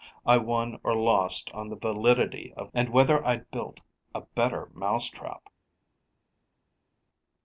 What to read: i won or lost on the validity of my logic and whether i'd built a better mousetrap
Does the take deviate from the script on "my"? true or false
true